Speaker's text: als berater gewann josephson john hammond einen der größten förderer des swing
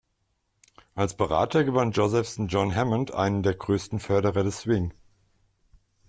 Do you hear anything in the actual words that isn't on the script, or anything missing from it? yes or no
no